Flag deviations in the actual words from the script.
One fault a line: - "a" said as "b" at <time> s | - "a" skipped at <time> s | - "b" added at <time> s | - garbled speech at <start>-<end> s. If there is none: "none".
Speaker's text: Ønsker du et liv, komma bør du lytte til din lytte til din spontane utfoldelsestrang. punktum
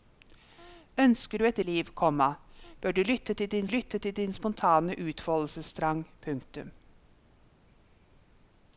none